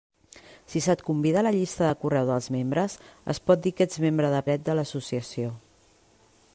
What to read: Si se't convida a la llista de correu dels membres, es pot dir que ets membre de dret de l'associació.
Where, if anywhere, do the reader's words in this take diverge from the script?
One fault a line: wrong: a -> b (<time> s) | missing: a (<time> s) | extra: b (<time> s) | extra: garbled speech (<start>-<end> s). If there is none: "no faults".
no faults